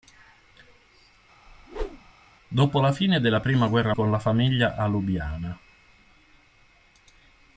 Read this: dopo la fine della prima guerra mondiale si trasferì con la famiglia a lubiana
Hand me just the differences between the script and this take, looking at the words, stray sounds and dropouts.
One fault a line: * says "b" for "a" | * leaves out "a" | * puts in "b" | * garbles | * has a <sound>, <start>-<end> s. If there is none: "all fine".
* has a whoosh, 1.5-2.1 s
* leaves out "mondiale si trasferì"